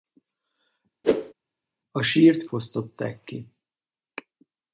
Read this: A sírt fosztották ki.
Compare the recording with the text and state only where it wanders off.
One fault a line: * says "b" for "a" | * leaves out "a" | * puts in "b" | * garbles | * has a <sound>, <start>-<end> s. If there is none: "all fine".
* has a whoosh, 1.0-1.3 s